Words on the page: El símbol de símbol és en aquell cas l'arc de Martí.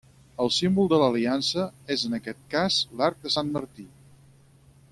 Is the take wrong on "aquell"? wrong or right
wrong